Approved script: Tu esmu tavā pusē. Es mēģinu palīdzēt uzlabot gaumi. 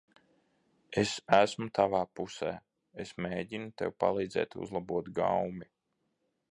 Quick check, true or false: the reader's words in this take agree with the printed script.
false